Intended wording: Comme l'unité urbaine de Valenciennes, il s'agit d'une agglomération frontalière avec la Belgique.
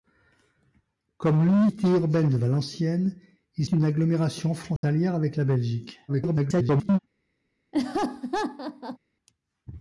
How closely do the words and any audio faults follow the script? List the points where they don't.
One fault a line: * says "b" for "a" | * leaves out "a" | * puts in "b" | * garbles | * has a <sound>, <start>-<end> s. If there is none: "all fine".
* leaves out "s'agit"
* has a dropout, 4.8-4.8 s
* garbles
* has a laugh, 7.7-9.0 s